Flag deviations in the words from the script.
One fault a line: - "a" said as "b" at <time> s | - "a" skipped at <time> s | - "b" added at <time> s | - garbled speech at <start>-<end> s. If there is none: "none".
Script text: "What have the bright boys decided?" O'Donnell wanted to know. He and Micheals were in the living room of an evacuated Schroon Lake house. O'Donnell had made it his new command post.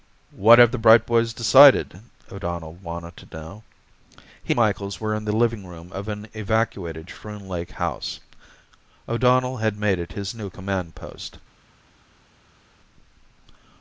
- "and" skipped at 4.5 s